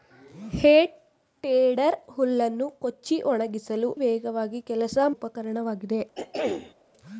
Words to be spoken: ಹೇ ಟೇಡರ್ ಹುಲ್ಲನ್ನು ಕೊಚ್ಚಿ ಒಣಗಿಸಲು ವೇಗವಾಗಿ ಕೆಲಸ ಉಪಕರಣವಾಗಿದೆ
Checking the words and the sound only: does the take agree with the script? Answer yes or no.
no